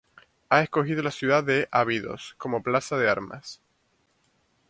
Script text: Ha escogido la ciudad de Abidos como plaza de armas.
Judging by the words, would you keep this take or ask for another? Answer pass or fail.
pass